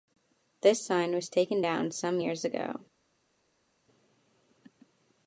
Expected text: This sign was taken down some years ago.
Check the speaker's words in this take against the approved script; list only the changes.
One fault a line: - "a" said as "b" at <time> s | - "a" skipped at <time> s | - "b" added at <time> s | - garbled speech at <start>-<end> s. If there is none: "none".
none